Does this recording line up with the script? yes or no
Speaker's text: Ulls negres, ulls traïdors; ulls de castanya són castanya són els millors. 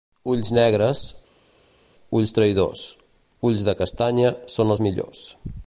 no